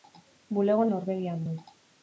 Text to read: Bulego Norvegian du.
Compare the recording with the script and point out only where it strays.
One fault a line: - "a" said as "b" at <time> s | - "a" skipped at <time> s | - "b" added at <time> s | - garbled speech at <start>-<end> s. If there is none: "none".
none